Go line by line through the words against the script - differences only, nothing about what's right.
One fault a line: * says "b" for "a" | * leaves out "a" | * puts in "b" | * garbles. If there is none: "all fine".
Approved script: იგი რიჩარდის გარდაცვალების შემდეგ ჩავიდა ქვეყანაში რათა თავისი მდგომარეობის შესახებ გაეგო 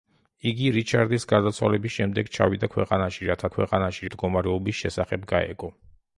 * says "ქვეყანაში" for "თავისი"